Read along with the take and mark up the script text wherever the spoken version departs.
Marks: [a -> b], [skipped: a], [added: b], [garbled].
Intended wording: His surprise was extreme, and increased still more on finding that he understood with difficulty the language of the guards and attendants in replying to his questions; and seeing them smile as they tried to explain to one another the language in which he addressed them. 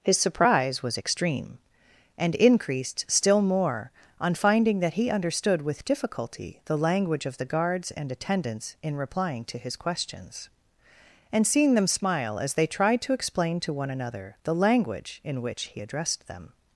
His surprise was extreme, and increased still more on finding that he understood with difficulty the language of the guards and attendants in replying to his questions; and seeing them smile as they tried to explain to one another the language in which he addressed them.